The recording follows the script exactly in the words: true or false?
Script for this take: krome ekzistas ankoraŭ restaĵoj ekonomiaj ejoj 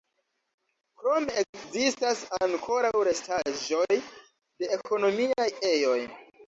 false